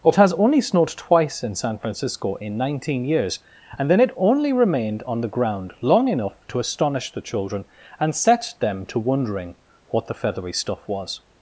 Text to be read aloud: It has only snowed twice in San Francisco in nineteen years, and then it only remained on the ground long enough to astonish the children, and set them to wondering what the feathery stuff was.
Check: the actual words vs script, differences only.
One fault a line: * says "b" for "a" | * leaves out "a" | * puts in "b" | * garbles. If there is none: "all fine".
all fine